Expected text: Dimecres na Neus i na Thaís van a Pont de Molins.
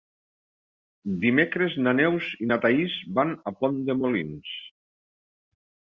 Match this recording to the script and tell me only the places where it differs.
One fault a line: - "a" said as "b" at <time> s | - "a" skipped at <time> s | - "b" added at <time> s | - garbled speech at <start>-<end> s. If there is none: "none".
none